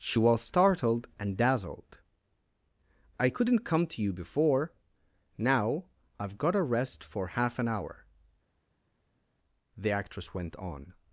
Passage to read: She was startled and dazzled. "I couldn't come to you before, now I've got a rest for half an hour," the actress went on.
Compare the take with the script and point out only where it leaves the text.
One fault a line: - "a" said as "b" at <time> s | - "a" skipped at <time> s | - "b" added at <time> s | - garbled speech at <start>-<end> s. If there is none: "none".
none